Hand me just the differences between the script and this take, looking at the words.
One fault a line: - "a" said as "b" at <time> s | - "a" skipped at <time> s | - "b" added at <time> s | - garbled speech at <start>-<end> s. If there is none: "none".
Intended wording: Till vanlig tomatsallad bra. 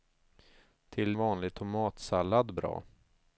none